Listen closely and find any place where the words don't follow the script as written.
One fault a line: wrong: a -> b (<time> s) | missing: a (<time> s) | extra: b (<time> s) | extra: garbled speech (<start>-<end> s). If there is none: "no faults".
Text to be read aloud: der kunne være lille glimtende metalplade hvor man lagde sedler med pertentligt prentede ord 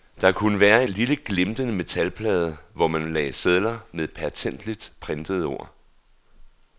no faults